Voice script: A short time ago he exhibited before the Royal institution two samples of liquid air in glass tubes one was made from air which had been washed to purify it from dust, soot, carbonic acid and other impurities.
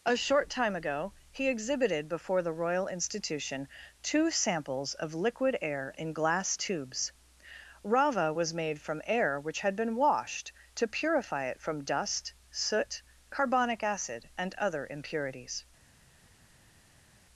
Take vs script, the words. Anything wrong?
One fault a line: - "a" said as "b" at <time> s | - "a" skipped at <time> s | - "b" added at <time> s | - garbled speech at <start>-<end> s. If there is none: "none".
- "one" said as "rava" at 7.8 s